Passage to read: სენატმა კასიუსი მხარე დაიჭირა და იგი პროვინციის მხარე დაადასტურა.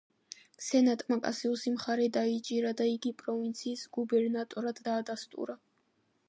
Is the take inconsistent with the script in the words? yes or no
yes